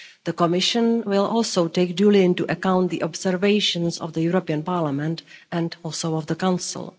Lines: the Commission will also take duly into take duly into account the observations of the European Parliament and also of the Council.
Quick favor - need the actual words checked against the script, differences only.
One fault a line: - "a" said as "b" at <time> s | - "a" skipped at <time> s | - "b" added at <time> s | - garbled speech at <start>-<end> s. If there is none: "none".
- "take duly into" skipped at 2.4 s